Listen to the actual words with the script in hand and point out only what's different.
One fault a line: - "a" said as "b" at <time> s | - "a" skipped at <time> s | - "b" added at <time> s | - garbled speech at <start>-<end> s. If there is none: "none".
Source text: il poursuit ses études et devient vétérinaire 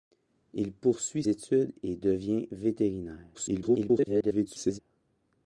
- "ses" skipped at 1.2 s
- garbled speech at 3.3-4.8 s